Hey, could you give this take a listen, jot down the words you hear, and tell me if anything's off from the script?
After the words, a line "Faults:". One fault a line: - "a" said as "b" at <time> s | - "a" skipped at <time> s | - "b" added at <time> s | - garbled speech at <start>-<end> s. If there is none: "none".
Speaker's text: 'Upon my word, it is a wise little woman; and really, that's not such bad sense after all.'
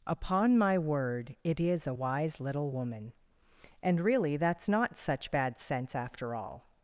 'Upon my word, it is a wise little woman; and really, that's not such bad sense after all.'
Faults:
none